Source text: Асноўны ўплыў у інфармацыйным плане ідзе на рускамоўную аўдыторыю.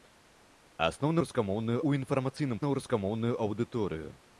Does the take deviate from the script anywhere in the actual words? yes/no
yes